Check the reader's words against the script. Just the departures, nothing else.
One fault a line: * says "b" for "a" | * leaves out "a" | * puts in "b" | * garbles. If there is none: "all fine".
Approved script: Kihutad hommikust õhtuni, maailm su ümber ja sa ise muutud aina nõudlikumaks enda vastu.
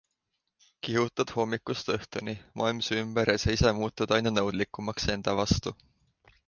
all fine